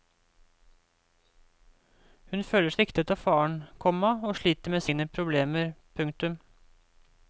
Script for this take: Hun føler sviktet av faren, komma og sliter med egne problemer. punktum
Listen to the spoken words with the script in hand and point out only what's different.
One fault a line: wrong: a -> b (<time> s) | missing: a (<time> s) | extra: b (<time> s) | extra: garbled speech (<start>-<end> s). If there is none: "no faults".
no faults